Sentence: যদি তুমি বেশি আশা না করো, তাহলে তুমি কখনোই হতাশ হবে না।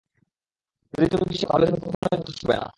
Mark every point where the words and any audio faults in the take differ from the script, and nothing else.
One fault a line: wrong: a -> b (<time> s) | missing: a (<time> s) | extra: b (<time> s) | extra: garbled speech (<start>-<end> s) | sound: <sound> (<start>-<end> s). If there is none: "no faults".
missing: আশা না করো (1.4 s)
sound: dropout (1.9-2.0 s)